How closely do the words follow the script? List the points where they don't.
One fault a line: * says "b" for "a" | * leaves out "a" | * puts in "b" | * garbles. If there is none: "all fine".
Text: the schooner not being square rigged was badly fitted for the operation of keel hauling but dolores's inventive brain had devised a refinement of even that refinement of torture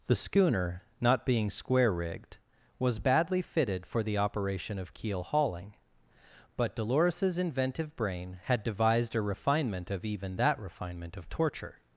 all fine